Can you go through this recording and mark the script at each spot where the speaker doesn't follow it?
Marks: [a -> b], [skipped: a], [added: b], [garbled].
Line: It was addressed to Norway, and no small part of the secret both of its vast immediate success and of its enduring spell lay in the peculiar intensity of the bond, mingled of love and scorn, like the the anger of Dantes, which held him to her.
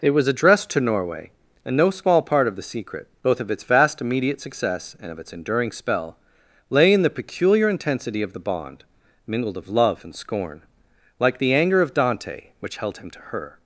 It was addressed to Norway, and no small part of the secret both of its vast immediate success and of its enduring spell lay in the peculiar intensity of the bond, mingled of love and scorn, like the [skipped: the] anger of [Dantes, -> Dante] which held him to her.